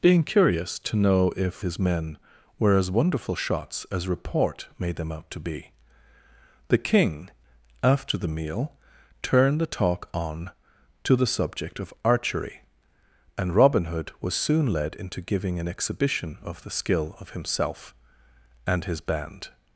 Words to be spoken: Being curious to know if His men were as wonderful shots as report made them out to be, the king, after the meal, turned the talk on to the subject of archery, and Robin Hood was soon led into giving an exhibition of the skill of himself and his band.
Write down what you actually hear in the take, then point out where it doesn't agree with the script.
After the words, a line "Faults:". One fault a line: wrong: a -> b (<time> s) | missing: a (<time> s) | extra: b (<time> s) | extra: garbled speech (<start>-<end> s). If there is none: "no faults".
Being curious to know if His men were as wonderful shots as report made them out to be, the king, after the meal, turned the talk on to the subject of archery, and Robin Hood was soon led into giving an exhibition of the skill of himself and his band.
Faults:
no faults